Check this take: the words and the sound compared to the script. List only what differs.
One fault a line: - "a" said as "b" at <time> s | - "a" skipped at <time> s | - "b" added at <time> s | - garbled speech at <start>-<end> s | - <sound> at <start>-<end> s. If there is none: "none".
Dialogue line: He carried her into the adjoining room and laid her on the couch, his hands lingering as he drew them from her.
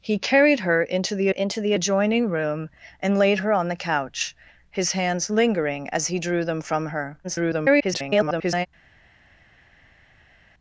- "into the" added at 1.3 s
- garbled speech at 7.2-8.7 s